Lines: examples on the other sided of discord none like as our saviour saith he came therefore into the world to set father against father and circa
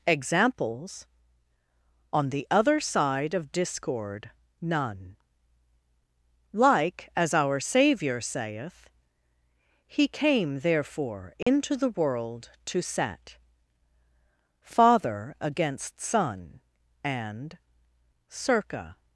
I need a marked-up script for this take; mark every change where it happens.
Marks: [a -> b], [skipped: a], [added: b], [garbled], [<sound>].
examples on the other [sided -> side] of discord none like as our saviour saith he came therefore into [dropout] the world to set father against [father -> son] and circa